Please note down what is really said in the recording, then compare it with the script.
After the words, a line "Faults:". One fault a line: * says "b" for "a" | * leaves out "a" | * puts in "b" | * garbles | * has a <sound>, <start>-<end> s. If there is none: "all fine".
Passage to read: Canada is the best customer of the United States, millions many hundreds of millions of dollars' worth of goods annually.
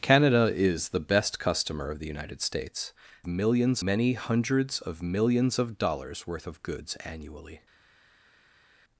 Canada is the best customer of the United States, millions many hundreds of millions of dollars' worth of goods annually.
Faults:
all fine